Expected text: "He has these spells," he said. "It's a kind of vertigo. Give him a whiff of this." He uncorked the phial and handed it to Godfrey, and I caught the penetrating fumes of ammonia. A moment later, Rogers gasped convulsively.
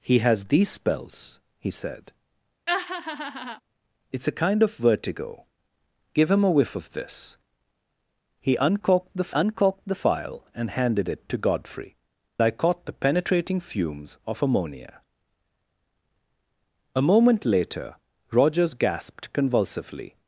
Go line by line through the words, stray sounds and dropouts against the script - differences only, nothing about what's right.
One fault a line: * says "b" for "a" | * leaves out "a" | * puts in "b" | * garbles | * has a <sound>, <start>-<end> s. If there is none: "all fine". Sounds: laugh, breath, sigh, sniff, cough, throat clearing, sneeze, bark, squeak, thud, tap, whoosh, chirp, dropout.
* has a laugh, 2.7-3.6 s
* puts in "uncorked the"
* leaves out "and"